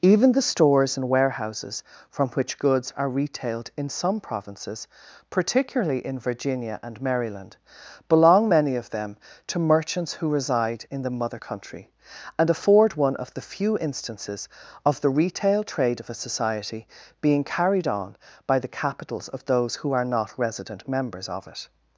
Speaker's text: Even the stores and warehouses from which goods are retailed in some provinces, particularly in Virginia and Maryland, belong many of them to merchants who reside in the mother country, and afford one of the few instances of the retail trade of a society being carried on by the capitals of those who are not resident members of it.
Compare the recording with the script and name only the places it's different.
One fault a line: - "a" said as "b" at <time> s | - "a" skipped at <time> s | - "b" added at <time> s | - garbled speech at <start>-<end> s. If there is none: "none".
none